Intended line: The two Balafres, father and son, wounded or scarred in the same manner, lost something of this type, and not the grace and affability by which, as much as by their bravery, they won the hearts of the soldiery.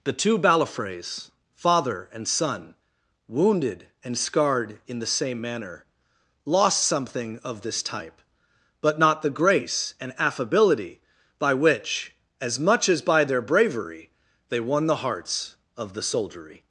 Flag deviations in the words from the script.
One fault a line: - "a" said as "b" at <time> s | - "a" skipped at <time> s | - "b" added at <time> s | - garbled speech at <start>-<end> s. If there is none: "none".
- "or" said as "and" at 4.0 s
- "and" said as "but" at 8.8 s